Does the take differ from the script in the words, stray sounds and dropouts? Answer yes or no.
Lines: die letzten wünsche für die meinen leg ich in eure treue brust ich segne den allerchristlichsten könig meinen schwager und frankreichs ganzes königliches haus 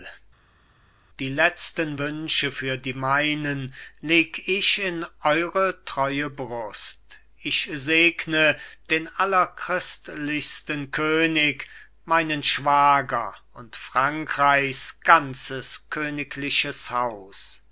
no